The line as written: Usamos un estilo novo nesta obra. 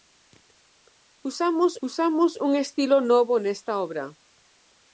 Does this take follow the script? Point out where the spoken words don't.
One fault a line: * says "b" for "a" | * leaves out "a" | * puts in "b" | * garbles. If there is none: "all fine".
* puts in "usamos"